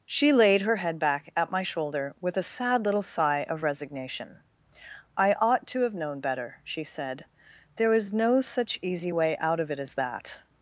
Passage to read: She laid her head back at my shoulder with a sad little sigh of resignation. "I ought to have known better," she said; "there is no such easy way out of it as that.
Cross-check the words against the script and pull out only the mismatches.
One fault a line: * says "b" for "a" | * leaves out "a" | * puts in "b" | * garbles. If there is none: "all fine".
all fine